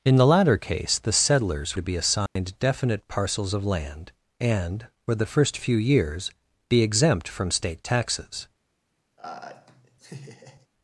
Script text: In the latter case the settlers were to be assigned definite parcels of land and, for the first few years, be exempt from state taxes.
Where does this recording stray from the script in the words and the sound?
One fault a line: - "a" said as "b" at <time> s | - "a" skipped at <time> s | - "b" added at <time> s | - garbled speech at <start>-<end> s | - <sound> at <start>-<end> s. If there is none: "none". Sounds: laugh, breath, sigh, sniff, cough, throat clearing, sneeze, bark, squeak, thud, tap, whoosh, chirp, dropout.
- "were" skipped at 1.8 s
- dropout at 2.3-2.4 s
- laugh at 9.2-10.7 s